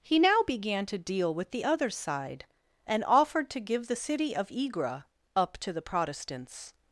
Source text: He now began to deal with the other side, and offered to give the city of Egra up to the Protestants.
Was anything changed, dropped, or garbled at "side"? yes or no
no